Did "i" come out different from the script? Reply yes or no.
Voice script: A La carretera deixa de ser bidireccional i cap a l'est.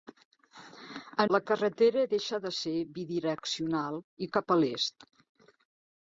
no